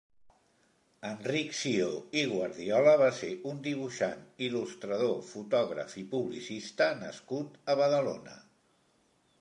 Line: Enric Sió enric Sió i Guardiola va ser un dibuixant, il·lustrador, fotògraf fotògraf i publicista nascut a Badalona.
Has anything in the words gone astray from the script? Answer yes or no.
yes